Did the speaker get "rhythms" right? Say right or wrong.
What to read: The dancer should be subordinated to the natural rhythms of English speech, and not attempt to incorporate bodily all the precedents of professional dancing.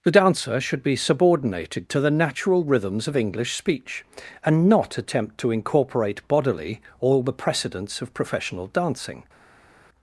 right